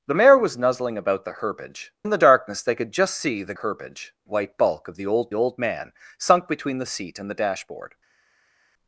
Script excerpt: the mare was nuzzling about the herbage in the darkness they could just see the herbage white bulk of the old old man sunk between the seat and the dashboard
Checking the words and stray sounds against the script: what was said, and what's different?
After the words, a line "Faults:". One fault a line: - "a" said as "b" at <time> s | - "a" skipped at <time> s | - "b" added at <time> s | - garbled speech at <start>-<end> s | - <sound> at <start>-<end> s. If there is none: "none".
the mare was nuzzling about the herbage in the darkness they could just see the herbage white bulk of the old old man sunk between the seat and the dashboard
Faults:
none